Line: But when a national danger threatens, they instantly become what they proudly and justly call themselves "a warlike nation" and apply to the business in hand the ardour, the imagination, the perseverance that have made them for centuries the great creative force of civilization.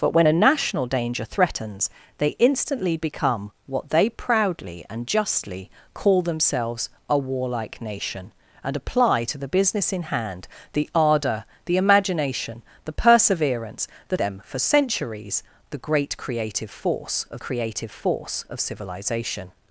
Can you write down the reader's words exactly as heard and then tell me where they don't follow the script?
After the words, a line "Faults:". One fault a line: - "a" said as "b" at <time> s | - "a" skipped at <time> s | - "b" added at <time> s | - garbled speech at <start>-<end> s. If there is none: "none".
But when a national danger threatens, they instantly become what they proudly and justly call themselves "a warlike nation" and apply to the business in hand the ardour, the imagination, the perseverance that them for centuries the great creative force of creative force of civilization.
Faults:
- "have made" skipped at 14.2 s
- "creative force of" added at 17.4 s